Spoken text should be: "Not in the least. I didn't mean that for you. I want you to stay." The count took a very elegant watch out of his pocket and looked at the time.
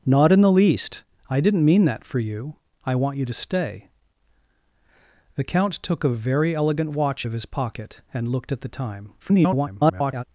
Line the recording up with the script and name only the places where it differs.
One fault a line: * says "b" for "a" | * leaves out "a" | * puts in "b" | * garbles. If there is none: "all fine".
* leaves out "out"
* garbles